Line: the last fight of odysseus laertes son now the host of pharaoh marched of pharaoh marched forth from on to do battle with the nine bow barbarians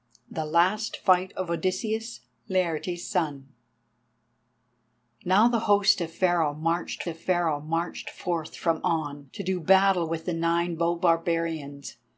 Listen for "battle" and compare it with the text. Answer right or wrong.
right